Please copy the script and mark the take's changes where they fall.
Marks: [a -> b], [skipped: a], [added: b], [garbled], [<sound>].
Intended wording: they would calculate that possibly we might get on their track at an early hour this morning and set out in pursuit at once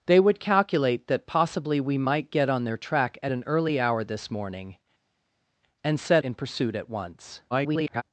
they would calculate that possibly we might get on their track at an early hour this morning and set [skipped: out] in pursuit at once [garbled]